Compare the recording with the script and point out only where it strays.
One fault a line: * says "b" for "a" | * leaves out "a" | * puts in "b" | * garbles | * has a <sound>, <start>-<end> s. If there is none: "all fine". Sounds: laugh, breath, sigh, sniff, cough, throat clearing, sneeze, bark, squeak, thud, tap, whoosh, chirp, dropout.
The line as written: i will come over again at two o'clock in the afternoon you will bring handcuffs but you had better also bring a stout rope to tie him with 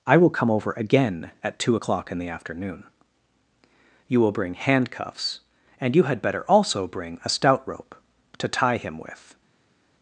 * says "and" for "but"